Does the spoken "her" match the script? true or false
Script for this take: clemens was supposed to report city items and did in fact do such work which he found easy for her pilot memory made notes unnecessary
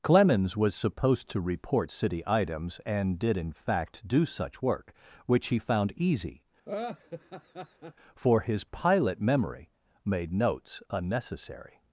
false